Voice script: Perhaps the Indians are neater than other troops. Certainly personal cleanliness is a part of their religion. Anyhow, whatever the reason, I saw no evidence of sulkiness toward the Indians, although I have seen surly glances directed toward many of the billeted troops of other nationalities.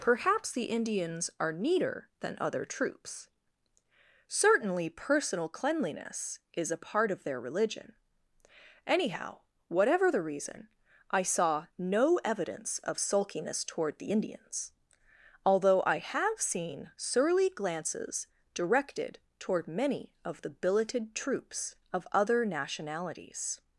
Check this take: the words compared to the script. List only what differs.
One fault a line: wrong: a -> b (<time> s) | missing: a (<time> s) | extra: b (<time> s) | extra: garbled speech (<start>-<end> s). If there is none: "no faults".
no faults